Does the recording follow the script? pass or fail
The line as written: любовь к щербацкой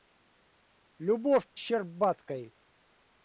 pass